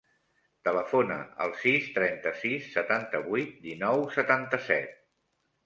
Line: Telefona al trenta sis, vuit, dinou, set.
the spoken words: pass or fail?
fail